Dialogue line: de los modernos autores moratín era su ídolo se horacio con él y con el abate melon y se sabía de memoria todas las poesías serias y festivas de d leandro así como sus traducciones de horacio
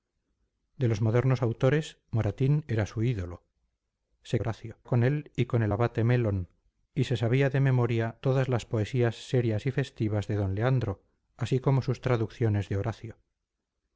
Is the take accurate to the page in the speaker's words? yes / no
yes